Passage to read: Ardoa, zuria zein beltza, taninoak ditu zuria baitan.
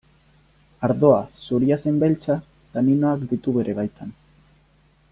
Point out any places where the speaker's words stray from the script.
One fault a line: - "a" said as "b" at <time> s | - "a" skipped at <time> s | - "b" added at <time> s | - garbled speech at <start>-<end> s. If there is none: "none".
- "zuria" said as "bere" at 3.6 s